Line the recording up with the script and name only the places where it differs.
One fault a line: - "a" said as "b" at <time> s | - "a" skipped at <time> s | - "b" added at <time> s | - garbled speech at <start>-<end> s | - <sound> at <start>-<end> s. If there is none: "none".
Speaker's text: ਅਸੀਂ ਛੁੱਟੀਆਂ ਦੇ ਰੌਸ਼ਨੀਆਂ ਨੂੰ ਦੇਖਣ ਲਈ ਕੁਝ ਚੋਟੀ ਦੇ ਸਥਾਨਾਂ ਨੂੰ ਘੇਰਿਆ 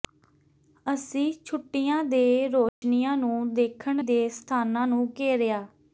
- dropout at 2.7-2.8 s
- "ਲਈ ਕੁਝ ਚੋਟੀ" skipped at 4.0 s